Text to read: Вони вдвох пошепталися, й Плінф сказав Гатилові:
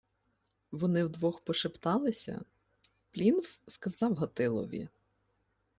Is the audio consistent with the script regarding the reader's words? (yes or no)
no